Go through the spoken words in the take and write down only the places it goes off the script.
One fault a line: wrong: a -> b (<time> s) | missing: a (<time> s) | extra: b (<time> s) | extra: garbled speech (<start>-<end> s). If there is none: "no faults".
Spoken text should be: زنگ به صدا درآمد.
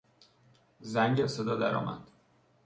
no faults